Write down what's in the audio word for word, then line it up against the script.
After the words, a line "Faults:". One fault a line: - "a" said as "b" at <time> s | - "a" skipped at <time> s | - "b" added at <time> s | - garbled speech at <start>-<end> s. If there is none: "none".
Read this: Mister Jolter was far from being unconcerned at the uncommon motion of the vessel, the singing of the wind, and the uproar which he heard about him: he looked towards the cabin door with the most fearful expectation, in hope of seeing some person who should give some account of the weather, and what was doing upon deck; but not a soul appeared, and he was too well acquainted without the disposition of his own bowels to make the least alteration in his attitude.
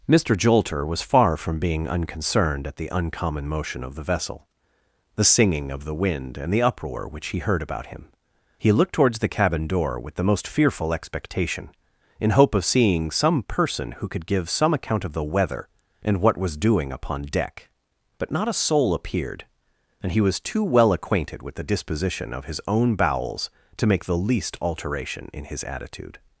Mister Jolter was far from being unconcerned at the uncommon motion of the vessel, the singing of the wind, and the uproar which he heard about him: he looked towards the cabin door with the most fearful expectation, in hope of seeing some person who could give some account of the weather, and what was doing upon deck; but not a soul appeared, and he was too well acquainted with the disposition of his own bowels to make the least alteration in his attitude.
Faults:
- "should" said as "could" at 14.1 s
- "without" said as "with" at 21.4 s